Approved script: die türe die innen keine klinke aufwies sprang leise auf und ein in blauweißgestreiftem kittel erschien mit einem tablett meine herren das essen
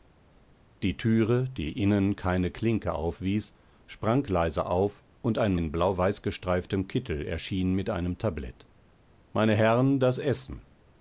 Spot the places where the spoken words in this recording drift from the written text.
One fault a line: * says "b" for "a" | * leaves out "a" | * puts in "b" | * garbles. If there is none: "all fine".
all fine